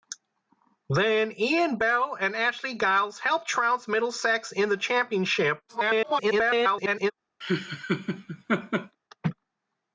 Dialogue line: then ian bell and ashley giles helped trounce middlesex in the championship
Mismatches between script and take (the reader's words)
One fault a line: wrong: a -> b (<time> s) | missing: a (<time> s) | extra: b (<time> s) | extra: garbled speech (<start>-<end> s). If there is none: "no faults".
extra: garbled speech (5.7-7.1 s)